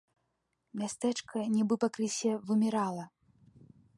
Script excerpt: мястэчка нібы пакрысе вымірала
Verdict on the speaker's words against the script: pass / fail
pass